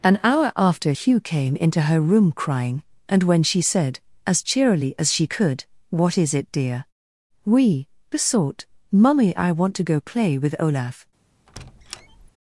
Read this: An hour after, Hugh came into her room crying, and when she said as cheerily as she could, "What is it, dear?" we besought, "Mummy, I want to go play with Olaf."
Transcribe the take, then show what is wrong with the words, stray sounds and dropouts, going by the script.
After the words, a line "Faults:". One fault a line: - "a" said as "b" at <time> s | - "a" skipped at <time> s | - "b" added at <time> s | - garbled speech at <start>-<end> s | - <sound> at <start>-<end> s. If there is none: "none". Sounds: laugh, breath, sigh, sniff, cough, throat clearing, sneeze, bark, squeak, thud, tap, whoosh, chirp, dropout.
An hour after, Hugh came into her room crying, and when she said as cheerily as she could, "What is it, dear?" we besought, "Mummy, I want to go play with Olaf."
Faults:
- squeak at 11.5-12.3 s